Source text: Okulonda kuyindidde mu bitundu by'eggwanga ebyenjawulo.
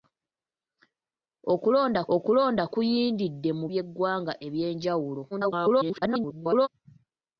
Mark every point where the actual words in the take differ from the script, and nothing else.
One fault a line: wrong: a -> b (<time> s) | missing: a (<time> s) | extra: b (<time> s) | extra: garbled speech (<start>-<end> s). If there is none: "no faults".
extra: okulonda (2.1 s)
missing: bitundu (3.7 s)
extra: garbled speech (5.3-6.7 s)